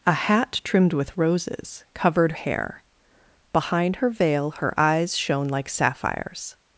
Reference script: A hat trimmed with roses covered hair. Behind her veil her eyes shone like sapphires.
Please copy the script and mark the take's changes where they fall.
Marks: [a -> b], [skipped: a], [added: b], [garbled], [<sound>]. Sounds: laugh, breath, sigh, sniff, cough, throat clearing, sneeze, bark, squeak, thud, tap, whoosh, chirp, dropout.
A hat trimmed with roses covered hair. Behind her veil her eyes shone like sapphires.